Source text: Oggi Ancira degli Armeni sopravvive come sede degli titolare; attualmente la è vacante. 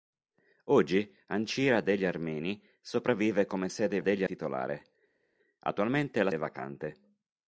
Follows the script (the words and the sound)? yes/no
yes